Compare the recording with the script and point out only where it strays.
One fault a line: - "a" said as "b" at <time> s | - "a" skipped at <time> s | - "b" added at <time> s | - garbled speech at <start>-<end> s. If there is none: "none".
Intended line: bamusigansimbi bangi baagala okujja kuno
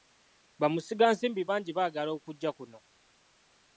none